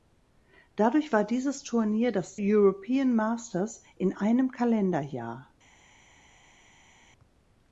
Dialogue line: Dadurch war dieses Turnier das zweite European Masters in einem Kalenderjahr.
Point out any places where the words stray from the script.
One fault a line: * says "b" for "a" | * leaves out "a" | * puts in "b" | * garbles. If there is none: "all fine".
* leaves out "zweite"